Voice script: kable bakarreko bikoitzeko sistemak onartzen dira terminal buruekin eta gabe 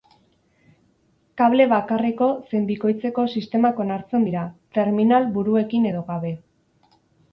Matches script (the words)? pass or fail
fail